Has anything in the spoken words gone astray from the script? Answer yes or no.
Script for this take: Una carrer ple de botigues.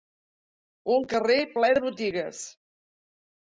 yes